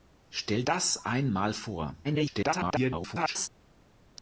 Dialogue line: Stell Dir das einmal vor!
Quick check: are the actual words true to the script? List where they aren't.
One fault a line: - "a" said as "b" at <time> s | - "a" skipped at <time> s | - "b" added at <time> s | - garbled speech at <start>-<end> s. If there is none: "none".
- "Dir" skipped at 0.6 s
- garbled speech at 2.0-3.5 s